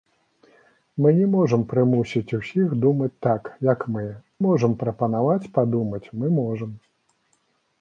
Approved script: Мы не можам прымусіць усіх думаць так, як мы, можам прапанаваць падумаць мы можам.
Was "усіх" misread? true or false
false